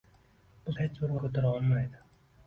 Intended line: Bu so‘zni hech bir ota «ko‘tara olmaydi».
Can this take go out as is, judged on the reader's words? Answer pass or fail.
fail